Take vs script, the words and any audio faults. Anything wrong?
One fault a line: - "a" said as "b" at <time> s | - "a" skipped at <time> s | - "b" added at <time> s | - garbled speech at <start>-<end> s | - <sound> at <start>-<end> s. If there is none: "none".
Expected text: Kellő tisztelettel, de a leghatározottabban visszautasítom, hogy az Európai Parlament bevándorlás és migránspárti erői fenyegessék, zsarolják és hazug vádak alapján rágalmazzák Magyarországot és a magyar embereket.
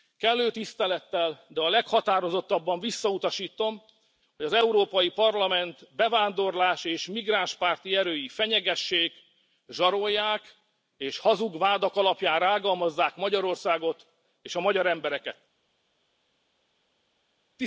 none